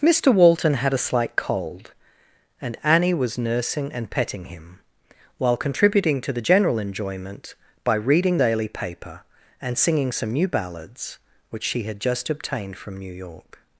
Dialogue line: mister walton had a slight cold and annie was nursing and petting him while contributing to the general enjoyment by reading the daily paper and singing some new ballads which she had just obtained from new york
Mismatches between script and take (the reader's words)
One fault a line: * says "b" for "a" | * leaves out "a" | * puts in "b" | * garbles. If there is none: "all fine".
* leaves out "the"